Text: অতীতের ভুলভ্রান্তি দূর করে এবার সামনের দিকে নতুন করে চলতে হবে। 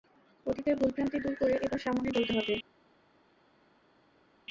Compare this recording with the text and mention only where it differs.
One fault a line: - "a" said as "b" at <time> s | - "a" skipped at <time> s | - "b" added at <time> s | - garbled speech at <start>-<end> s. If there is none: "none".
- "দিকে নতুন করে" skipped at 2.1 s